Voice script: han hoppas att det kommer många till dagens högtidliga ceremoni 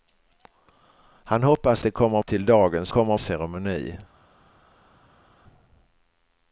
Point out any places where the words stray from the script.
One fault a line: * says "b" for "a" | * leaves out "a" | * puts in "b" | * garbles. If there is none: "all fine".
* leaves out "att"
* leaves out "många"
* says "kommer" for "högtidliga"